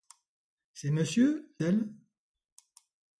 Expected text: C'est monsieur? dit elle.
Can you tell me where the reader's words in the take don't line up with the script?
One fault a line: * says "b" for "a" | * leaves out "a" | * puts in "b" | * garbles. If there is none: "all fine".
* leaves out "dit"